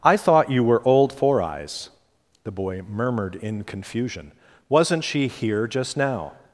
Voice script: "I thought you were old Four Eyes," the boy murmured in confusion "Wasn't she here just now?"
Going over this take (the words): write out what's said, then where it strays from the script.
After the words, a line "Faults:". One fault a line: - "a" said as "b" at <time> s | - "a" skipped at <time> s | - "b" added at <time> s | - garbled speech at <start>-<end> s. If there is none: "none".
"I thought you were old Four Eyes," the boy murmured in confusion "Wasn't she here just now?"
Faults:
none